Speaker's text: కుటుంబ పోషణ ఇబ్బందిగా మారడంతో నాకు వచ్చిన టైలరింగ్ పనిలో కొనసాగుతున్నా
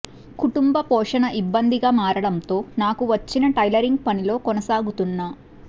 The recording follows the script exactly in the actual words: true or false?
true